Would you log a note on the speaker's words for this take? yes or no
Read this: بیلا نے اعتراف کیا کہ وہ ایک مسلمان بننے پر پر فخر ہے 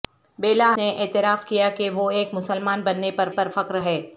no